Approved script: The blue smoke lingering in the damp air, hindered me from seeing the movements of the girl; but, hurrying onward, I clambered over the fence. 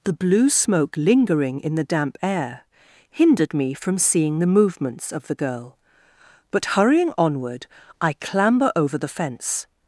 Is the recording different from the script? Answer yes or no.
yes